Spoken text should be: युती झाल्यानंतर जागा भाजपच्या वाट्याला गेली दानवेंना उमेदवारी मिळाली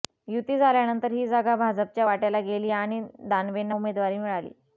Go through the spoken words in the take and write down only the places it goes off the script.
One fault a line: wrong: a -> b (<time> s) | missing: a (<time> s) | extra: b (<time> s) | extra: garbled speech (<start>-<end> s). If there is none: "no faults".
extra: ही (1.1 s)
extra: आणि (2.7 s)